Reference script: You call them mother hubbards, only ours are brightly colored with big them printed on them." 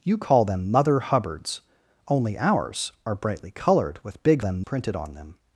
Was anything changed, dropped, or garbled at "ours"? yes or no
no